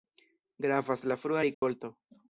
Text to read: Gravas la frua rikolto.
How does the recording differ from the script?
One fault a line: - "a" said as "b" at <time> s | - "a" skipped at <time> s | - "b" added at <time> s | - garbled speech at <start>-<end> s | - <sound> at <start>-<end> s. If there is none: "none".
- dropout at 1.5-1.6 s